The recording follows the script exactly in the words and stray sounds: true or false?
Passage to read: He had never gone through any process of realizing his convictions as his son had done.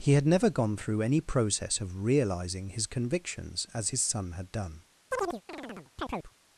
false